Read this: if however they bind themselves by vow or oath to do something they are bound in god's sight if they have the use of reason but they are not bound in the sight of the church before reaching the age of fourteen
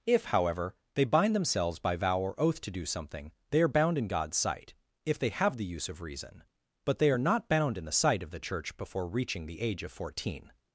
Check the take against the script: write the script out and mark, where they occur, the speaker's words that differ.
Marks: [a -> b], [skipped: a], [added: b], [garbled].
if however they bind themselves by vow or oath to do something they are bound in god's sight if they have the use of reason but they are not bound in the sight of the church before reaching the age of fourteen